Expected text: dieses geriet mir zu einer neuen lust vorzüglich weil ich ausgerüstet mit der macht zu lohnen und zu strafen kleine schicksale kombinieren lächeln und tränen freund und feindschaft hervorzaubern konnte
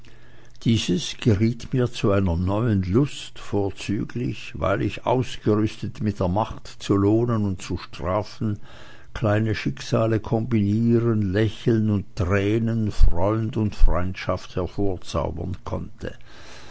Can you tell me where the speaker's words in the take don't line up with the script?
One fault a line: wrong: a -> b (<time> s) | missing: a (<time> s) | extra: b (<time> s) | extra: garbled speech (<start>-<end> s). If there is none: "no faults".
no faults